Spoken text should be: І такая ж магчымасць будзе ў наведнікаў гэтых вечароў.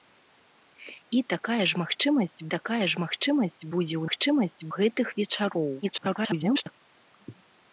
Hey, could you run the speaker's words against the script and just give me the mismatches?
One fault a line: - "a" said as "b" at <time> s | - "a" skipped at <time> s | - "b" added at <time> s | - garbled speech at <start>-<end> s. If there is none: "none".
- "такая ж магчымасць" added at 2.5 s
- "наведнікаў" said as "магчымасць" at 4.0 s
- garbled speech at 5.8-6.7 s